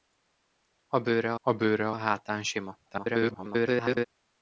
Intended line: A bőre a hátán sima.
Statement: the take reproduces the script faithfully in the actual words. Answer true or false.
false